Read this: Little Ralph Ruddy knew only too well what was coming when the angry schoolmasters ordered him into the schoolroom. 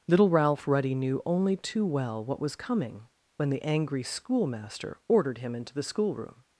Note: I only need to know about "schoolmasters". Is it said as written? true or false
false